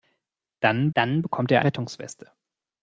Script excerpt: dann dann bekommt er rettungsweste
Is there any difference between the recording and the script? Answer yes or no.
no